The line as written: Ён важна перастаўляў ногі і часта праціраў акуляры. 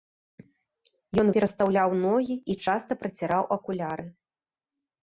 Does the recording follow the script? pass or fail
fail